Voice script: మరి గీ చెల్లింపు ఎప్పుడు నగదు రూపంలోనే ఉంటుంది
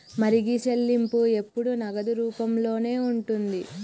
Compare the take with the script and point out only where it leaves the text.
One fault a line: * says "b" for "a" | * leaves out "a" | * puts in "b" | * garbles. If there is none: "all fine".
all fine